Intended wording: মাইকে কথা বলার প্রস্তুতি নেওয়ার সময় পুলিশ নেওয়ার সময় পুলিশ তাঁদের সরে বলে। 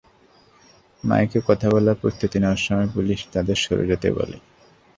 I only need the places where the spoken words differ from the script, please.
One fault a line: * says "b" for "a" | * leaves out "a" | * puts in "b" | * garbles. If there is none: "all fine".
* leaves out "নেওয়ার সময় পুলিশ"
* puts in "যেতে"